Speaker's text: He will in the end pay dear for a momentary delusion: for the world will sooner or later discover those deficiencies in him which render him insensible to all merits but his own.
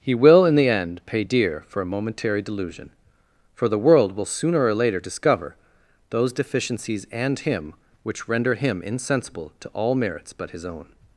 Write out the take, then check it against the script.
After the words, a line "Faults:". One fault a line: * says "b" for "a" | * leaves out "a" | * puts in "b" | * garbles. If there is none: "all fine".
He will in the end pay dear for a momentary delusion: for the world will sooner or later discover those deficiencies and him which render him insensible to all merits but his own.
Faults:
* says "and" for "in"